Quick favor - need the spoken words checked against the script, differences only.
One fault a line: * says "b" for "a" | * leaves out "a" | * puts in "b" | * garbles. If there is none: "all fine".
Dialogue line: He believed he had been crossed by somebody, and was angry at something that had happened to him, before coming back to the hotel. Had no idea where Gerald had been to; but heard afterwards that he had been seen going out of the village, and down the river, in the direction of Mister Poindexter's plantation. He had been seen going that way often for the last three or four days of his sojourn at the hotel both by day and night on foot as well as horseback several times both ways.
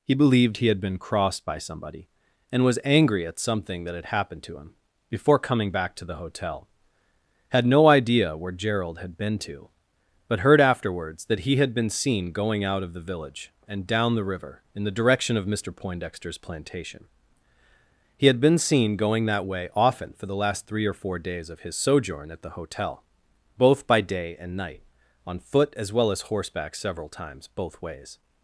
all fine